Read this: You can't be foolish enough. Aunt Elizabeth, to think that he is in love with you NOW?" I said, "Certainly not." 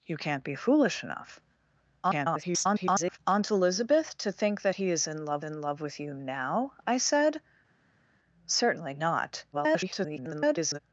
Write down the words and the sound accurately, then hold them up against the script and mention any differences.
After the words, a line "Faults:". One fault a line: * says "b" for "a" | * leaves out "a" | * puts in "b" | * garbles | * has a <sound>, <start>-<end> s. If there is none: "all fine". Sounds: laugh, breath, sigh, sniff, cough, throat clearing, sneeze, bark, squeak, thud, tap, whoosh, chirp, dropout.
You can't be foolish enough. [garbled] Aunt Elizabeth, to think that he is in love in love with you NOW?" I said, "Certainly not." [garbled]
Faults:
* garbles
* puts in "in love"
* garbles